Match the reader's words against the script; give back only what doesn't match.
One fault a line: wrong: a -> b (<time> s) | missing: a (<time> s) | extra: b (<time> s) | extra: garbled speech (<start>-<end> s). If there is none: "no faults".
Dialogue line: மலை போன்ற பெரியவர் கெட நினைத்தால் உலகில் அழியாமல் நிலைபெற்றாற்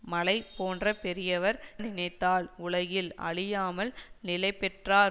missing: கெட (1.6 s)